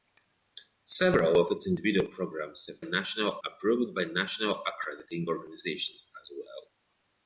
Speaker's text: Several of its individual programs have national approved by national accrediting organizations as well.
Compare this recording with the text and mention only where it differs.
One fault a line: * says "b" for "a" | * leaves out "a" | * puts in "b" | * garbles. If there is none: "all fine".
all fine